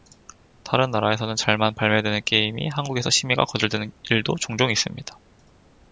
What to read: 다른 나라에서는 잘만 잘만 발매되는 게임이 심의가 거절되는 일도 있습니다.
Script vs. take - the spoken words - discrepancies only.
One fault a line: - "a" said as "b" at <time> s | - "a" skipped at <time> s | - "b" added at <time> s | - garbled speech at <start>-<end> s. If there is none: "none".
- "잘만" skipped at 1.8 s
- "한국에서" added at 2.7 s
- "종종" added at 4.4 s